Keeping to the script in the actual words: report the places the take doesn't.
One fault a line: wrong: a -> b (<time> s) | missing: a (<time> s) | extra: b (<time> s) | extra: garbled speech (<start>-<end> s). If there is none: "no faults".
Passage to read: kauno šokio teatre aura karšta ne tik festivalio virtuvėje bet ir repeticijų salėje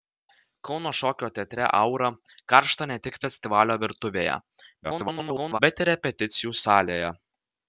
extra: garbled speech (4.8-5.6 s)